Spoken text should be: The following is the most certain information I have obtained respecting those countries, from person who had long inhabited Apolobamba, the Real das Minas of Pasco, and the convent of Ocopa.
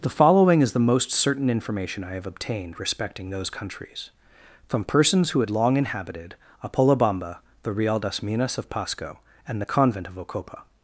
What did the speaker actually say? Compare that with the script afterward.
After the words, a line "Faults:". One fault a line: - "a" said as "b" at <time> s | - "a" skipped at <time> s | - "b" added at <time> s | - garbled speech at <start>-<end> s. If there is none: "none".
The following is the most certain information I have obtained respecting those countries, from persons who had long inhabited Apolobamba, the Real das Minas of Pasco, and the convent of Ocopa.
Faults:
- "person" said as "persons" at 4.8 s